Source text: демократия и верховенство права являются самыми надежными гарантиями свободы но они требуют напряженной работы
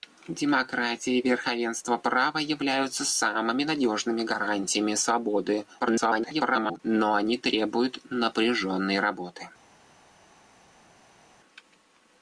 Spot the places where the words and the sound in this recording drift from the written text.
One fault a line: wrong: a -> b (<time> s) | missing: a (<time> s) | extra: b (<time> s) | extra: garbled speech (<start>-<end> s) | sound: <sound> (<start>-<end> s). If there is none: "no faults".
extra: garbled speech (5.8-6.8 s)